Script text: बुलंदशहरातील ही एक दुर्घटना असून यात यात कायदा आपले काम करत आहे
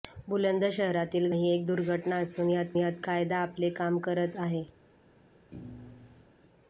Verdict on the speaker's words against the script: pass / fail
pass